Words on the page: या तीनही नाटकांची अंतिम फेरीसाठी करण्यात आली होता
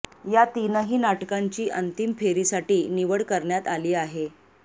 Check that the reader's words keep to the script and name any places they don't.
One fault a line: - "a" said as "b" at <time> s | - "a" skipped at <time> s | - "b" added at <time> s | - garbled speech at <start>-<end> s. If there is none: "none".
- "निवड" added at 2.9 s
- "होता" said as "आहे" at 4.0 s